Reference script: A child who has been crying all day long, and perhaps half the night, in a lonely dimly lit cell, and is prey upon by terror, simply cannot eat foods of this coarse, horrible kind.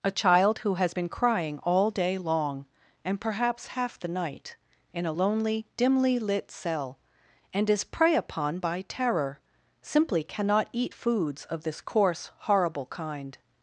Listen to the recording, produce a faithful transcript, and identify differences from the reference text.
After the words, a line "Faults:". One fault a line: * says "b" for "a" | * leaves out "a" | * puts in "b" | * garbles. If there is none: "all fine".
A child who has been crying all day long, and perhaps half the night, in a lonely dimly lit cell, and is prey upon by terror, simply cannot eat foods of this coarse, horrible kind.
Faults:
all fine